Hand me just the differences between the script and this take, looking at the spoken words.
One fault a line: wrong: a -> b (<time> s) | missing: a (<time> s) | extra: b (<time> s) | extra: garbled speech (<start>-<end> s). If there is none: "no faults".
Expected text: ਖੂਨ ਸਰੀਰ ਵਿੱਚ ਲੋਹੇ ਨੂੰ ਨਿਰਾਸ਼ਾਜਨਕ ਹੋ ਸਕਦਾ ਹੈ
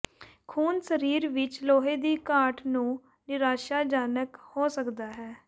extra: ਦੀ ਘਾਟ (2.0 s)